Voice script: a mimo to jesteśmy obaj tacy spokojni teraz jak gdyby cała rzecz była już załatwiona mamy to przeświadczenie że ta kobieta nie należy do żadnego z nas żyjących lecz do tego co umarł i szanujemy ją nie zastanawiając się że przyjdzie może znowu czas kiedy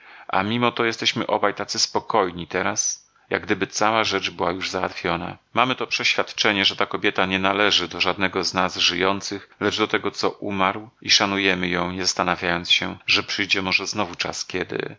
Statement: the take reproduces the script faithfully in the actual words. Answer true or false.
true